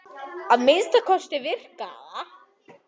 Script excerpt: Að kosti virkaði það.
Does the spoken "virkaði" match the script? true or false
true